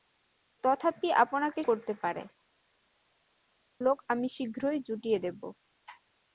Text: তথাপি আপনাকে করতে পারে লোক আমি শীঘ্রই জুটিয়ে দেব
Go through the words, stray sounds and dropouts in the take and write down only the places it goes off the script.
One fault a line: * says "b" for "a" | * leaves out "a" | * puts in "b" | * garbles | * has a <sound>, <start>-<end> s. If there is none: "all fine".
all fine